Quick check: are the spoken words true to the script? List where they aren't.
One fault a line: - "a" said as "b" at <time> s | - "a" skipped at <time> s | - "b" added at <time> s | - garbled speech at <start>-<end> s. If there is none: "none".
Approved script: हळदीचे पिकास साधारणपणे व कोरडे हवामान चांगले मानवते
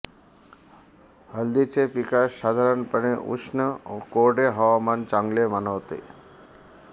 - "उष्ण" added at 3.3 s